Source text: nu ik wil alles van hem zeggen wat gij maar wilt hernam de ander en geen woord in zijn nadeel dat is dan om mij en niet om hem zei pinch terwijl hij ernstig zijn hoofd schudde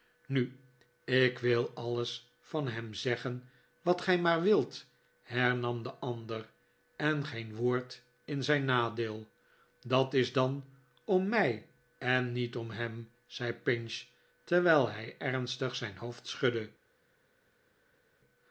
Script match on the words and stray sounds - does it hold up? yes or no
yes